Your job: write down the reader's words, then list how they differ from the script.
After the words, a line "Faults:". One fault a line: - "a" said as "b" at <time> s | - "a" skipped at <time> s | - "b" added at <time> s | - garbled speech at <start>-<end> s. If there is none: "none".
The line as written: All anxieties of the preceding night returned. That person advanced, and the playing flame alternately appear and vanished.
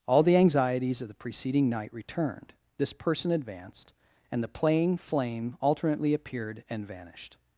All the anxieties of the preceding night returned. This person advanced, and the playing flame alternately appeared and vanished.
Faults:
- "the" added at 0.2 s
- "That" said as "This" at 2.8 s
- "appear" said as "appeared" at 6.1 s